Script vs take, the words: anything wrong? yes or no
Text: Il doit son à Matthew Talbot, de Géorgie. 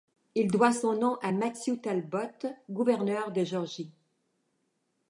yes